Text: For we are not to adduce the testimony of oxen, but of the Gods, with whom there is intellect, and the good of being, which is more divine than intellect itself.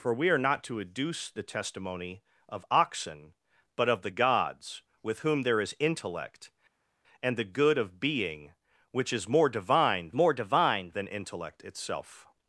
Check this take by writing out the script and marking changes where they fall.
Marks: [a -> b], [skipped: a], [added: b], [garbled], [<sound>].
For we are not to adduce the testimony of oxen, but of the Gods, with whom there is intellect, and the good of being, which is more divine [added: more divine] than intellect itself.